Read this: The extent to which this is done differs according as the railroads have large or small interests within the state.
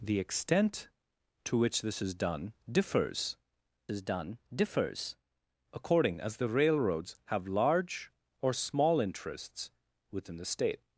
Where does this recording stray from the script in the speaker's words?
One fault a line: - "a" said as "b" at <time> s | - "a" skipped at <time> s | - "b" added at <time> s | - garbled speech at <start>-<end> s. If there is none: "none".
- "is done differs" added at 3.9 s